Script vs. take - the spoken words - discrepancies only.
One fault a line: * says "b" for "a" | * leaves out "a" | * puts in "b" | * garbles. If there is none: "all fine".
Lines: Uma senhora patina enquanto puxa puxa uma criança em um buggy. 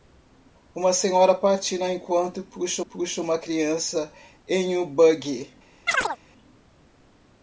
all fine